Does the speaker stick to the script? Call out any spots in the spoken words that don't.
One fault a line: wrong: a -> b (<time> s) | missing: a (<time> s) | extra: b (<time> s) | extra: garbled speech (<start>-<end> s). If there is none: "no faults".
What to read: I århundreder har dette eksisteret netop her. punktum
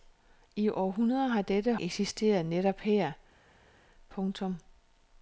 no faults